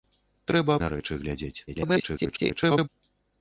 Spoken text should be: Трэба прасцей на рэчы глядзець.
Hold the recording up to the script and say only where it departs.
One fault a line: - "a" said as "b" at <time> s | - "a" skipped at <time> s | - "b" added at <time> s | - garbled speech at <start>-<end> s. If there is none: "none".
- "прасцей" skipped at 0.8 s
- garbled speech at 1.7-2.9 s